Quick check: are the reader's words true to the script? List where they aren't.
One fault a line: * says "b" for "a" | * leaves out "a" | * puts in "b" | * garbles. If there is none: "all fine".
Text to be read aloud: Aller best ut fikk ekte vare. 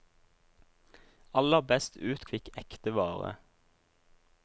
all fine